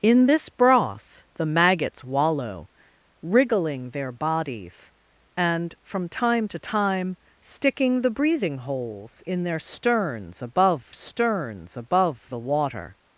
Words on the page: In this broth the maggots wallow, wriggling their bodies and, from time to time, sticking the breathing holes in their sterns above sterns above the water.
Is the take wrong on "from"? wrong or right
right